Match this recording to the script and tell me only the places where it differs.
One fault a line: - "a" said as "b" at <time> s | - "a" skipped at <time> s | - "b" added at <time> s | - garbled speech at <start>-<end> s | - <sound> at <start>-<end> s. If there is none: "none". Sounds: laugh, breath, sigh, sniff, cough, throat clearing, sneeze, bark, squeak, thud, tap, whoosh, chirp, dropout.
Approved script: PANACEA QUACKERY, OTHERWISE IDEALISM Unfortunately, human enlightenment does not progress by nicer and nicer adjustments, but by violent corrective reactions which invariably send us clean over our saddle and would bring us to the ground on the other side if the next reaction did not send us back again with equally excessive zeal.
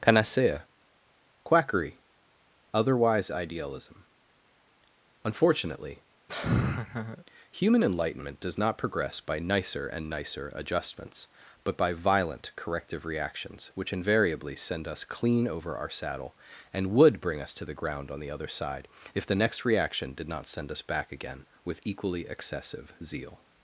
- laugh at 6.3-7.2 s